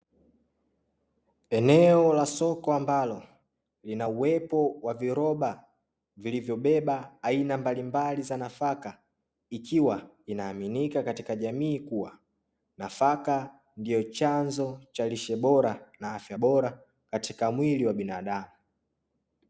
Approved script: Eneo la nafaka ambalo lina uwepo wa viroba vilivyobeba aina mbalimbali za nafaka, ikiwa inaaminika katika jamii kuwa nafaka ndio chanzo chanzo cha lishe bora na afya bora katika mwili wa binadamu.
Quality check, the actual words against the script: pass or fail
fail